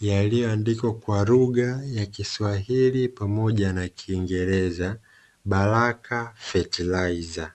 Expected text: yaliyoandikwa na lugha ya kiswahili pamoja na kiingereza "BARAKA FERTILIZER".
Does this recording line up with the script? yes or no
no